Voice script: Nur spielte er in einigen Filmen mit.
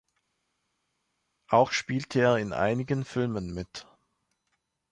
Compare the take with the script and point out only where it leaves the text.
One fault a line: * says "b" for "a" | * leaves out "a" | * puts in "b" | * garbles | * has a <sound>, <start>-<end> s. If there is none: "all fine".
* says "Auch" for "Nur"